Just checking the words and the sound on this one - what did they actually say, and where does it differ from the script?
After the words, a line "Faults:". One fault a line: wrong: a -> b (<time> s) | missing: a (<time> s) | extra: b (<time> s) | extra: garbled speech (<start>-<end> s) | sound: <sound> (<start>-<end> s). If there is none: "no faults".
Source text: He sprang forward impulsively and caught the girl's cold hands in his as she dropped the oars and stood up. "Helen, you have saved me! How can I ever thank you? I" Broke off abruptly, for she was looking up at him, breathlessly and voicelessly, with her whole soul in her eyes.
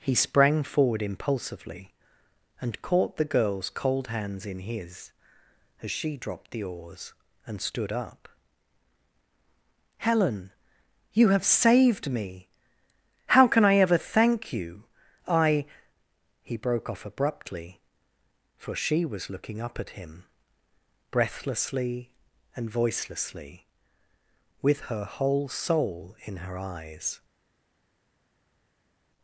He sprang forward impulsively and caught the girl's cold hands in his as she dropped the oars and stood up. "Helen, you have saved me! How can I ever thank you? I" He broke off abruptly, for she was looking up at him, breathlessly and voicelessly, with her whole soul in her eyes.
Faults:
extra: He (16.4 s)